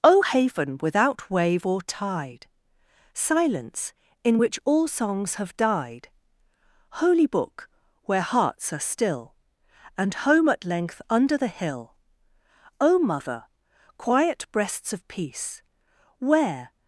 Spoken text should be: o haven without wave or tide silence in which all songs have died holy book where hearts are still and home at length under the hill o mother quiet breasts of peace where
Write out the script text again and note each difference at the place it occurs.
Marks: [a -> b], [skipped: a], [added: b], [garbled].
o haven without wave or tide silence in which all songs have died holy book where hearts are still and home at length under the hill o mother quiet breasts of peace where